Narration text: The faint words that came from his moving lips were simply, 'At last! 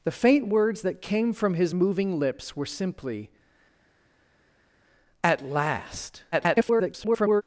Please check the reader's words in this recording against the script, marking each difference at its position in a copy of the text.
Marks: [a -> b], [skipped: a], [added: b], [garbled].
The faint words that came from his moving lips were simply, 'At last! [garbled]